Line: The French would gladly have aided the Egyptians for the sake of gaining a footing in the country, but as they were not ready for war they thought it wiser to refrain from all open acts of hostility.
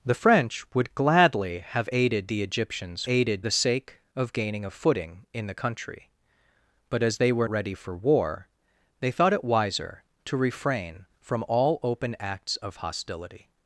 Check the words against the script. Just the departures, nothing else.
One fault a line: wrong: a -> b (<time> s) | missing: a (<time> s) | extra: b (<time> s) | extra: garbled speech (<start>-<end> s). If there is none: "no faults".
wrong: for -> aided (3.1 s)
missing: not (7.5 s)